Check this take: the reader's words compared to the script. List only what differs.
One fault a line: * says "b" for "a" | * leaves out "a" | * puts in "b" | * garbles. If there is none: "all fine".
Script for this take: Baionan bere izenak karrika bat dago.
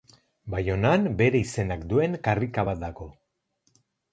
* puts in "duen"